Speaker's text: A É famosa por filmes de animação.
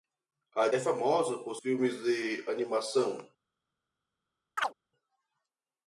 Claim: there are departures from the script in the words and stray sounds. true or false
true